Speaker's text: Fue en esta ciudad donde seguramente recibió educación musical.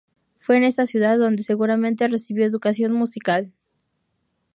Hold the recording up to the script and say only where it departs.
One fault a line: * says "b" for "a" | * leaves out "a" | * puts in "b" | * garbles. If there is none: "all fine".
all fine